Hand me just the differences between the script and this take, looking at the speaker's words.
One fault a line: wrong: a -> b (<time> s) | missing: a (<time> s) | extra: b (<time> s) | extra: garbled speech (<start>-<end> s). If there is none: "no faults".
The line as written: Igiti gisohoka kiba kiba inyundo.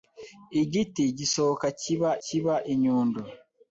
no faults